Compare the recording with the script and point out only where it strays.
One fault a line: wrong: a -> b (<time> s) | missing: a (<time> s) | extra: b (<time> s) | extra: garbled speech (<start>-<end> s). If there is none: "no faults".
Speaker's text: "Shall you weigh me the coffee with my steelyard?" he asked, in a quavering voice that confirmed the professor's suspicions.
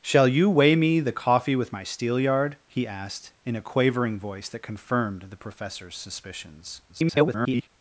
extra: garbled speech (6.9-7.7 s)